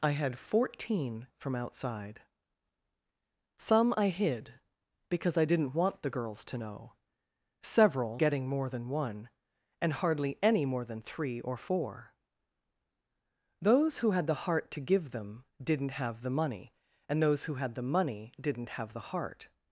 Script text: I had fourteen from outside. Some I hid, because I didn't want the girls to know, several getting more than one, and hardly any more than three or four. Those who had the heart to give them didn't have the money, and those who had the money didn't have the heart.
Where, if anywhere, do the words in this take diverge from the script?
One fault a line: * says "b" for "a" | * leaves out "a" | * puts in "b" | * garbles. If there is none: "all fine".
all fine